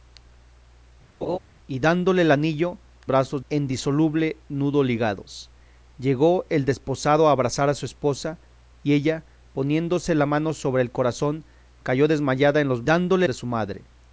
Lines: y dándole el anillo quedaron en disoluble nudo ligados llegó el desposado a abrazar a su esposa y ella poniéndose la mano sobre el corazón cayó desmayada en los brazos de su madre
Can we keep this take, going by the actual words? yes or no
no